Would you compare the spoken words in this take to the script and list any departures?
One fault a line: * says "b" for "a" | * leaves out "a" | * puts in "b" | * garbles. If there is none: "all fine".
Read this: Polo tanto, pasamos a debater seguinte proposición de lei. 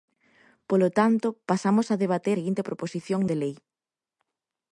all fine